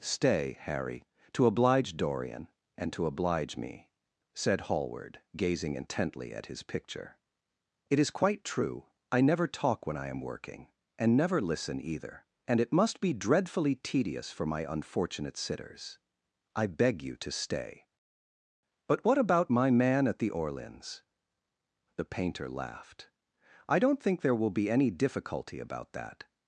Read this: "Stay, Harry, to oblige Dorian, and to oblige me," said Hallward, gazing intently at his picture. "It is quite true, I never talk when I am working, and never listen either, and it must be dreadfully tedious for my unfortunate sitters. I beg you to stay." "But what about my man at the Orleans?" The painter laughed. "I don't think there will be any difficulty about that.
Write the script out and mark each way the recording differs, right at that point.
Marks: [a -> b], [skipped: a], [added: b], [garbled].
"Stay, Harry, to oblige Dorian, and to oblige me," said Hallward, gazing intently at his picture. "It is quite true, I never talk when I am working, and never listen either, and it must be dreadfully tedious for my unfortunate sitters. I beg you to stay." "But what about my man at the Orleans?" The painter laughed. "I don't think there will be any difficulty about that.